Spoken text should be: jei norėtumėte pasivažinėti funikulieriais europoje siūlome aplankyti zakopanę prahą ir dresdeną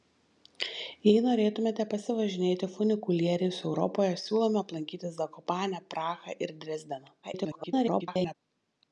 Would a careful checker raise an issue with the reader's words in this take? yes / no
yes